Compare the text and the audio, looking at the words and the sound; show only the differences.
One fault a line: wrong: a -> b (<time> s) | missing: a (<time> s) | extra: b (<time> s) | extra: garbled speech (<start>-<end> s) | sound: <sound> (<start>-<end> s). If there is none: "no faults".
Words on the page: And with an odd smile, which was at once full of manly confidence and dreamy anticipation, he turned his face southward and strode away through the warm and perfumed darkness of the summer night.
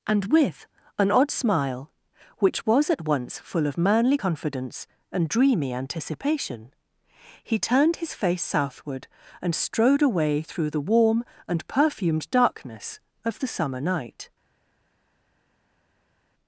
no faults